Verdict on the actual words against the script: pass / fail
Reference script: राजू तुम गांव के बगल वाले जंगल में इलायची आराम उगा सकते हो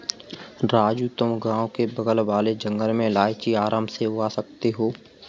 fail